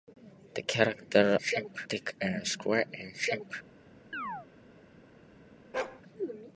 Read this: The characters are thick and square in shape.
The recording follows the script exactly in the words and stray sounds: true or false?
false